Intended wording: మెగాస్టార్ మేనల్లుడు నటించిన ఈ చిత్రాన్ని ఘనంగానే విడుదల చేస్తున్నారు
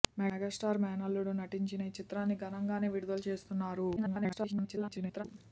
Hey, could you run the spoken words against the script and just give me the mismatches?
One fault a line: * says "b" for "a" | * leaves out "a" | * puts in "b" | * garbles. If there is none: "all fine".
* garbles